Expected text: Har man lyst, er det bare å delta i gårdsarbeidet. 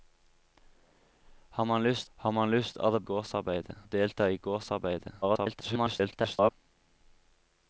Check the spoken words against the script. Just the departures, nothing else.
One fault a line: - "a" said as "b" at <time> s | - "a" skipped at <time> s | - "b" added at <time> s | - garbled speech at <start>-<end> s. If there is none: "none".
- "har man lyst" added at 2.2 s
- "bare" said as "gårdsarbeidet" at 3.1 s
- garbled speech at 5.2-6.5 s